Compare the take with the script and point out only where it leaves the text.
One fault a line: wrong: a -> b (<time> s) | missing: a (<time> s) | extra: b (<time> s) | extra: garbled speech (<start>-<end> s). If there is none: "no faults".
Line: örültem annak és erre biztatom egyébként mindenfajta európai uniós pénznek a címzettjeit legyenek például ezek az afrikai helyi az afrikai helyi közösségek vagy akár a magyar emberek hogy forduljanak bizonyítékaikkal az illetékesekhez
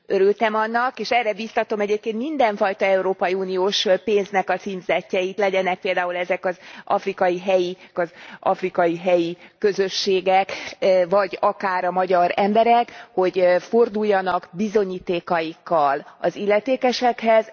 no faults